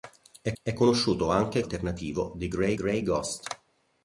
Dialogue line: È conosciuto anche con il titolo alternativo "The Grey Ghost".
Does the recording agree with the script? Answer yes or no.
no